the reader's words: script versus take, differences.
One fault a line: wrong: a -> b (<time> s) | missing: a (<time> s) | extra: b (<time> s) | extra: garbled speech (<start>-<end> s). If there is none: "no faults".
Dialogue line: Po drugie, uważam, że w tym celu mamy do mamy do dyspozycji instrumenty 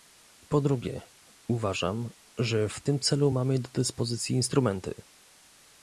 missing: mamy do (3.7 s)